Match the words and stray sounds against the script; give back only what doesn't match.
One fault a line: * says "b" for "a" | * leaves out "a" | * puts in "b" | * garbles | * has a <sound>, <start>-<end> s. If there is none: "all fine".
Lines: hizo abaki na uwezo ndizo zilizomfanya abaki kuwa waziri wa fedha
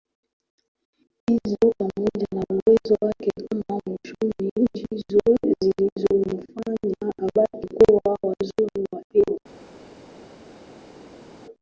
* says "pamoja" for "abaki"
* puts in "wake kama mchumi"